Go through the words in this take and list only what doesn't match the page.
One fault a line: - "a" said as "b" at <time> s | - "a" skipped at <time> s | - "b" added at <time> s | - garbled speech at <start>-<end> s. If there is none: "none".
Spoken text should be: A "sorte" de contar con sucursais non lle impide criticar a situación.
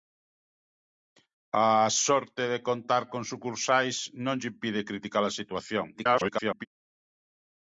- garbled speech at 5.9-6.7 s